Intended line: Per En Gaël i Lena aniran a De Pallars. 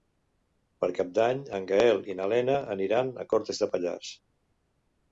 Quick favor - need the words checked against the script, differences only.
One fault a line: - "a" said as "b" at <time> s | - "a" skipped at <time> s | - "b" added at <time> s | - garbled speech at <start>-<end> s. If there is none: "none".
- "Cap d'Any" added at 1.0 s
- "na" added at 2.2 s
- "Cortes" added at 3.4 s